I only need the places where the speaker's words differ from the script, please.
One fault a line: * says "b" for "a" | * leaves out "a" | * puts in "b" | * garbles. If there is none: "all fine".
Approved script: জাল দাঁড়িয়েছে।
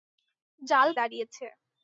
all fine